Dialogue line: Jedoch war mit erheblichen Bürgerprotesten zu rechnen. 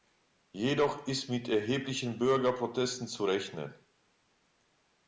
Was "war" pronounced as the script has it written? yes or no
no